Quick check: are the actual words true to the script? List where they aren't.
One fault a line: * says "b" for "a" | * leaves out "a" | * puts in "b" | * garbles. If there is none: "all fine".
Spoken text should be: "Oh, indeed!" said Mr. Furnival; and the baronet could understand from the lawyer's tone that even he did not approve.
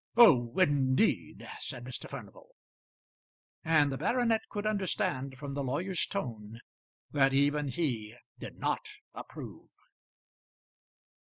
all fine